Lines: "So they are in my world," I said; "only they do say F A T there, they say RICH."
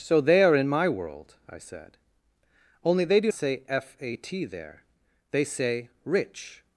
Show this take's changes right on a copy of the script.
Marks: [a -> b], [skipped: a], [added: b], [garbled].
"So they are in my world," I said; "only they do say F A T there, they say RICH."